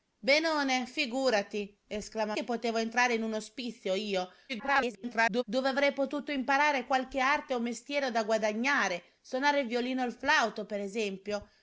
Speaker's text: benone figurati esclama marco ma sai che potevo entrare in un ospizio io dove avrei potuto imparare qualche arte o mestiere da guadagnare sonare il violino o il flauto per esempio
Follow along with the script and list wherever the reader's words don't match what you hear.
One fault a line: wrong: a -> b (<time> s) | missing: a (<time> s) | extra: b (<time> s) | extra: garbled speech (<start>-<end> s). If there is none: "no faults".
missing: marco ma sai (2.4 s)
extra: garbled speech (4.5-5.4 s)